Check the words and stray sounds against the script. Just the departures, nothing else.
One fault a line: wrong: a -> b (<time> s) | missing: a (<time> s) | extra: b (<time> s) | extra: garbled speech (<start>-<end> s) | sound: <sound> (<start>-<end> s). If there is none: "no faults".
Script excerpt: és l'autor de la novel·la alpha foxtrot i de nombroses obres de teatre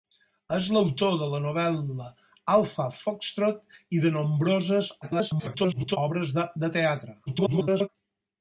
extra: garbled speech (5.0-6.0 s)
extra: garbled speech (7.3-7.9 s)